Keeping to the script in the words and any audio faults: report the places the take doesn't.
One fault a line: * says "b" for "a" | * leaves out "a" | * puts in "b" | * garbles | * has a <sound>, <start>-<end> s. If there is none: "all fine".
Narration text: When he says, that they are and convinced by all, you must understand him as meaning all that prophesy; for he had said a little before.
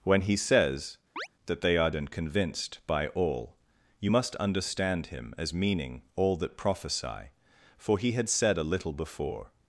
* has a chirp, 1.2-1.3 s